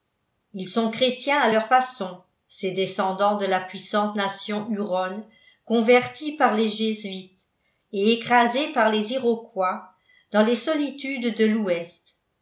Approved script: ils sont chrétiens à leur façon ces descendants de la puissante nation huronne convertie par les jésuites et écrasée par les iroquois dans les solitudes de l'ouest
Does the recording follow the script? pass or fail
pass